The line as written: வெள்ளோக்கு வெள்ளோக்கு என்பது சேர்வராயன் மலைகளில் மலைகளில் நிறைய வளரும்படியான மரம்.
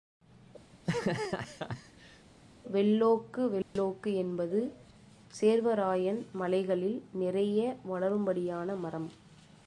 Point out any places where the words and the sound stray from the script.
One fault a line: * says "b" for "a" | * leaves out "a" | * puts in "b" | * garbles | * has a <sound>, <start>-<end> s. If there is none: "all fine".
* has a laugh, 0.7-2.3 s
* has a dropout, 3.6-3.8 s
* leaves out "மலைகளில்"